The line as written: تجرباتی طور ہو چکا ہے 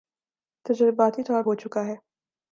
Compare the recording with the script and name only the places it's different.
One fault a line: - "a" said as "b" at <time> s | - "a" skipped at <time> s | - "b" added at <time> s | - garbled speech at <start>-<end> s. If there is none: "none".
none